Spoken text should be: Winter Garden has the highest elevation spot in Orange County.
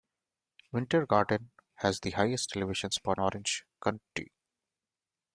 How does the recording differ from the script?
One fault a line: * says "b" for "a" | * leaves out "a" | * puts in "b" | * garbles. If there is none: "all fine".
* leaves out "in"